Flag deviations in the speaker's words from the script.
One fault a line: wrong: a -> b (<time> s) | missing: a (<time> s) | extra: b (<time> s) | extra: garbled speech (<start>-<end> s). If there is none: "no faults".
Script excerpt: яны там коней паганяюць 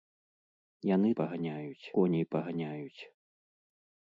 wrong: там -> паганяюць (1.2 s)